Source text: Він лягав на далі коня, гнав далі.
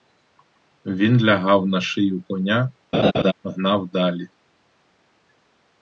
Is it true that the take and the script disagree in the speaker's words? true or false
true